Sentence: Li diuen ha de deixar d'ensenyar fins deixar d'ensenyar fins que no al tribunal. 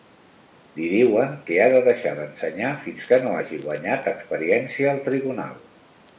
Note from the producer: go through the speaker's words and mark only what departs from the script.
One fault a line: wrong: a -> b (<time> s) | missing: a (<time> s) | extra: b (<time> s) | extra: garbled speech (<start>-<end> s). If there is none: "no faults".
extra: que (1.5 s)
wrong: deixar d'ensenyar fins que no -> que no hagi guanyat experiència (3.1 s)